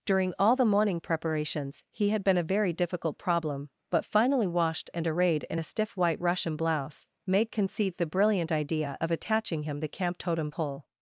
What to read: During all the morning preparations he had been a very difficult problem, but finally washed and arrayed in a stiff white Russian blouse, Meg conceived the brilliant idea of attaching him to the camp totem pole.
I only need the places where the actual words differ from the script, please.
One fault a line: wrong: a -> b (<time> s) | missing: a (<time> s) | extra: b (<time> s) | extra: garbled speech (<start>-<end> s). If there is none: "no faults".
missing: to (9.8 s)